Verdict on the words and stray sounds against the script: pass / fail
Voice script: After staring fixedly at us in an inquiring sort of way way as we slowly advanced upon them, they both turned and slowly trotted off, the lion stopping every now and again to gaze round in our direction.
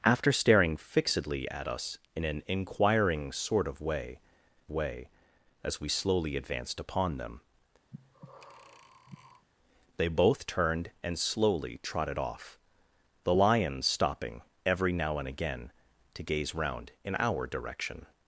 fail